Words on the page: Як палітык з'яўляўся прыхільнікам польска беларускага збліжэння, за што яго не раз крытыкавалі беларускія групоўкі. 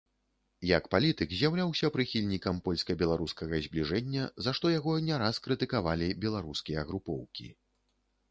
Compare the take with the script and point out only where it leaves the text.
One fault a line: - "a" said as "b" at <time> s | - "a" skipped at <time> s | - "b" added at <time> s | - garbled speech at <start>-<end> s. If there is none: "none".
none